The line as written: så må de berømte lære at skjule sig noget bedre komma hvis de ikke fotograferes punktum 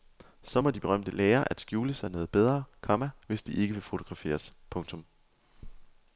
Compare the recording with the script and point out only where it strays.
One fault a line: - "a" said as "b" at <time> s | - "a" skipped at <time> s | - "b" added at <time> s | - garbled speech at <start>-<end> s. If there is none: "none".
- "vil" added at 3.7 s